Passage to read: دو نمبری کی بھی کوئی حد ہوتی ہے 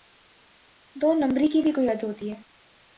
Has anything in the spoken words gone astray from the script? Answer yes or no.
no